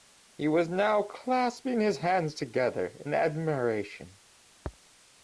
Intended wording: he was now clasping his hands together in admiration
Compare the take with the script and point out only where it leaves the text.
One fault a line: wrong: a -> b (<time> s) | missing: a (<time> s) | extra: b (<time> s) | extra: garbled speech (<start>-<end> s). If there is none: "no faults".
no faults